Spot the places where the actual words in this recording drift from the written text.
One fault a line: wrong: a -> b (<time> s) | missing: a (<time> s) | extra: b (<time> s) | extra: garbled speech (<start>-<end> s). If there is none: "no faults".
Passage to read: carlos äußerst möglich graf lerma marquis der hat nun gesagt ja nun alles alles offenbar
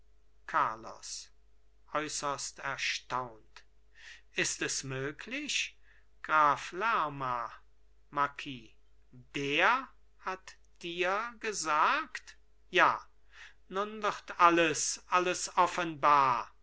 extra: erstaunt ist es (2.6 s)
wrong: nun -> dir (10.8 s)
extra: wird (14.0 s)